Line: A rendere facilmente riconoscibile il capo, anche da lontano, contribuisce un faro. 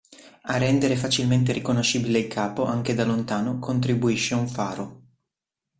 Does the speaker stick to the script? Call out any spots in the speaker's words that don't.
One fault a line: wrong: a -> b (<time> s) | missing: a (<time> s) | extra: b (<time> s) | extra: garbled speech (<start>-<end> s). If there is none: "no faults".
no faults